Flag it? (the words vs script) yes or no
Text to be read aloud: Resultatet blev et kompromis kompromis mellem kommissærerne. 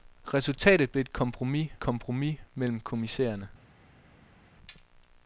no